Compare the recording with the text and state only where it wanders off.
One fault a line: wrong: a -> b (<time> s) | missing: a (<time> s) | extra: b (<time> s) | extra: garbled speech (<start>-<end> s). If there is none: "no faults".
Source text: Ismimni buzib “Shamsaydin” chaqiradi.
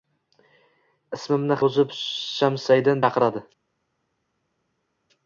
no faults